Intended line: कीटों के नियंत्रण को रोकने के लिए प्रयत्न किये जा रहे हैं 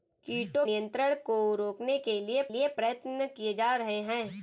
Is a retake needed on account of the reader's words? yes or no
yes